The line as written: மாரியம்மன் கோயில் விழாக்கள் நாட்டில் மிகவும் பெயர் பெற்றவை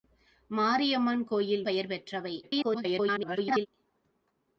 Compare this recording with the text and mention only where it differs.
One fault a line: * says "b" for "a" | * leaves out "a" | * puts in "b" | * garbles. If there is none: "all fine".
* leaves out "விழாக்கள் நாட்டில் மிகவும்"
* garbles